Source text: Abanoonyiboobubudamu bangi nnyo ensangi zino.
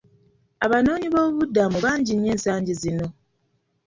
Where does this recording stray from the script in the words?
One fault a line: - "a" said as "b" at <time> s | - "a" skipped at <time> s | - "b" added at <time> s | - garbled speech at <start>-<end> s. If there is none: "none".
none